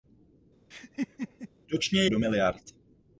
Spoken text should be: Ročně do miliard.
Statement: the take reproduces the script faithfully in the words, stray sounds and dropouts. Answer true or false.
false